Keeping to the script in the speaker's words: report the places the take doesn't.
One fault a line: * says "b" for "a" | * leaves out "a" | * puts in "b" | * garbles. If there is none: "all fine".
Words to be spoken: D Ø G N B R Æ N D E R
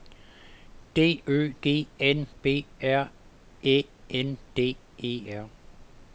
all fine